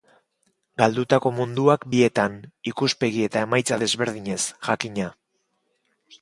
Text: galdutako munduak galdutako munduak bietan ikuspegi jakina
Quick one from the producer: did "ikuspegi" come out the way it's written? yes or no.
no